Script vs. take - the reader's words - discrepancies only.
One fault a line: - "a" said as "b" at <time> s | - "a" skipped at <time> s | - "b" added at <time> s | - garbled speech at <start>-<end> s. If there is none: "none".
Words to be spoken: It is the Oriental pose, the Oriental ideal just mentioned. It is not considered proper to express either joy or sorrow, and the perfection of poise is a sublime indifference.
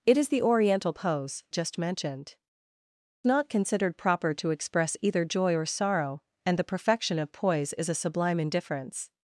- "the Oriental ideal" skipped at 1.4 s
- "It is" skipped at 2.4 s